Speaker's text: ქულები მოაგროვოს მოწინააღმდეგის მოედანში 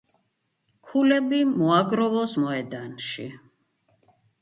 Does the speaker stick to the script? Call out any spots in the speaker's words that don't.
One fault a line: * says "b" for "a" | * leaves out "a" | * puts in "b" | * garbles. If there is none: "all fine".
* leaves out "მოწინააღმდეგის"